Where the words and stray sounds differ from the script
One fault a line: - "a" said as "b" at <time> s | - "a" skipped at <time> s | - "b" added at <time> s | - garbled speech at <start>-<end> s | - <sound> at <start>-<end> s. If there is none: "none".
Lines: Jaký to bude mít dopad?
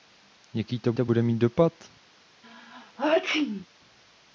- "to" added at 0.9 s
- sneeze at 2.4-3.7 s